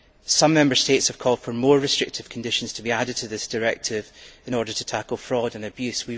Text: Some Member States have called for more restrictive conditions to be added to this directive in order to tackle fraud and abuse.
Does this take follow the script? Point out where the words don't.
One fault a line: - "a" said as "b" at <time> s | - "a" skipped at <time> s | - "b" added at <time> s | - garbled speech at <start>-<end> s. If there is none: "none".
none